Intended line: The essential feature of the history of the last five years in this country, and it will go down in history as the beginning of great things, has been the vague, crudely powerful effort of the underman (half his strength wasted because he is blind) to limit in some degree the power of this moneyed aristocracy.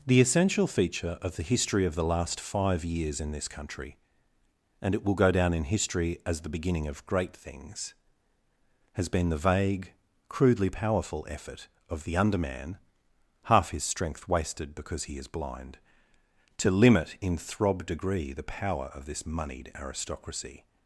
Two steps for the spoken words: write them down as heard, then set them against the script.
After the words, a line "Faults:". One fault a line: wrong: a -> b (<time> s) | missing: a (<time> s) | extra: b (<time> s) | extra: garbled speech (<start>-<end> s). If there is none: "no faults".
The essential feature of the history of the last five years in this country, and it will go down in history as the beginning of great things, has been the vague, crudely powerful effort of the underman (half his strength wasted because he is blind) to limit in throb degree the power of this moneyed aristocracy.
Faults:
wrong: some -> throb (17.3 s)